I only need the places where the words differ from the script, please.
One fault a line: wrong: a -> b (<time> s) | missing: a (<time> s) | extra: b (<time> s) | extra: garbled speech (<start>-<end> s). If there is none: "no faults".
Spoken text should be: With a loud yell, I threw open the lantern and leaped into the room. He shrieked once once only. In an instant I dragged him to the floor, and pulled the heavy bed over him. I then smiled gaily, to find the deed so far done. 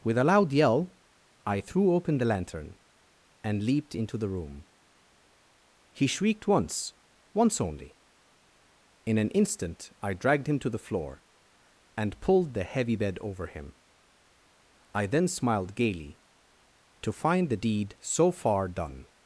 no faults